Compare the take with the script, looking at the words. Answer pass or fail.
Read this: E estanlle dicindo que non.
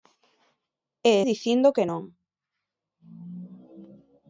fail